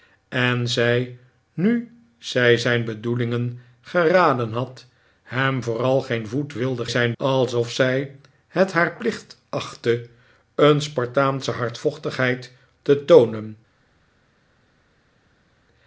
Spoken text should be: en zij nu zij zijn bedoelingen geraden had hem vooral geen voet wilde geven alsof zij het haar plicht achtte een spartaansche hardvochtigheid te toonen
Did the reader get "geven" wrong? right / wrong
wrong